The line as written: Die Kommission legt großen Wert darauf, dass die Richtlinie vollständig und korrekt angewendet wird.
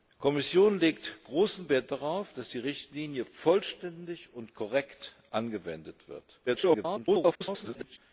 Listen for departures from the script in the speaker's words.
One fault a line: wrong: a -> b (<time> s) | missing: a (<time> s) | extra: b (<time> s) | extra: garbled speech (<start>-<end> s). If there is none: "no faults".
extra: garbled speech (6.5-8.0 s)